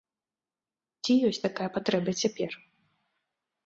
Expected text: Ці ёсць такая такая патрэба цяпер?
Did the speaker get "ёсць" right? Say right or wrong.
right